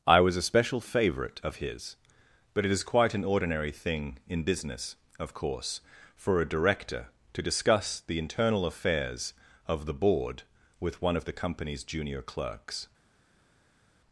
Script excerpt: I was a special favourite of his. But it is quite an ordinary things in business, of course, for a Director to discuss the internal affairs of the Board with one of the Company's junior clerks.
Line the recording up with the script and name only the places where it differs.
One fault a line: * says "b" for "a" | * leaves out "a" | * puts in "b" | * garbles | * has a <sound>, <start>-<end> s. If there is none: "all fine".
* says "thing" for "things"